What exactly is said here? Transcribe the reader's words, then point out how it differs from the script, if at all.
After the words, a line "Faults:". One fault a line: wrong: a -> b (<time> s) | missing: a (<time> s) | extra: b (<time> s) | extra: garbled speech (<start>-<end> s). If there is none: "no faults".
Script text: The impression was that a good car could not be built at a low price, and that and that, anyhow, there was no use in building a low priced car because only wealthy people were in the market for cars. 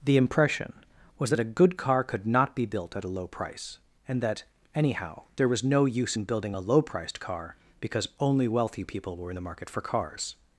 The impression was that a good car could not be built at a low price, and that, anyhow, there was no use in building a low priced car because only wealthy people were in the market for cars.
Faults:
missing: and that (4.5 s)